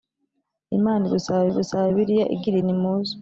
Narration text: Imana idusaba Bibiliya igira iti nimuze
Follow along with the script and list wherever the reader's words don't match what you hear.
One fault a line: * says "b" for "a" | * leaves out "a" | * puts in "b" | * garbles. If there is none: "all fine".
* puts in "idusaba"
* leaves out "iti"